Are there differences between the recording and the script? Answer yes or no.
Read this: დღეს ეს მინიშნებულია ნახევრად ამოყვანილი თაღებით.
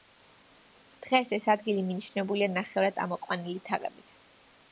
yes